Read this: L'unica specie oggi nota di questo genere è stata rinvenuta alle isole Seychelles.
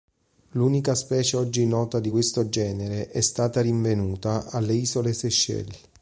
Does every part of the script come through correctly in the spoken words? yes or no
yes